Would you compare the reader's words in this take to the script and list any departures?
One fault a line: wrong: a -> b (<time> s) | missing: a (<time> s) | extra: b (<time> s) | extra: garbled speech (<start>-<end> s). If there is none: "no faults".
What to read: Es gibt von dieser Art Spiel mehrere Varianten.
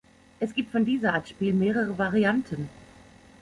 no faults